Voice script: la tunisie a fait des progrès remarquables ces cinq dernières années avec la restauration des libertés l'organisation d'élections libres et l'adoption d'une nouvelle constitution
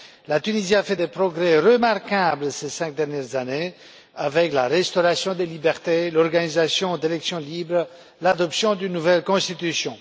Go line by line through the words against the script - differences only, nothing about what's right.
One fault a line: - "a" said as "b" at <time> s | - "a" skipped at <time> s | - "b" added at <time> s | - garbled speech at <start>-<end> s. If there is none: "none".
none